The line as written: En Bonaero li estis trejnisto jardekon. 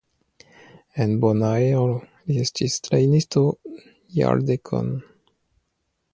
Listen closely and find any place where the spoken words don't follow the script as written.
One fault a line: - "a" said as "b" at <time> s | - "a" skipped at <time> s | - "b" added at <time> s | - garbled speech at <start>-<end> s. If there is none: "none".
none